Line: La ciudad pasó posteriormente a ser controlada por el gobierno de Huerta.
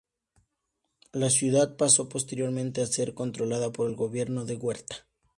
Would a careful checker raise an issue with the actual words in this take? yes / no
no